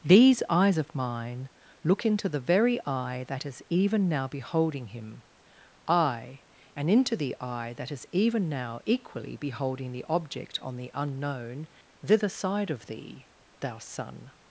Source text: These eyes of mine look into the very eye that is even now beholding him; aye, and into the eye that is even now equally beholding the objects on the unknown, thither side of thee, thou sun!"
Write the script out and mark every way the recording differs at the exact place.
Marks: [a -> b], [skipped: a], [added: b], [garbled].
These eyes of mine look into the very eye that is even now beholding him; aye, and into the eye that is even now equally beholding the [objects -> object] on the unknown, thither side of thee, thou sun!"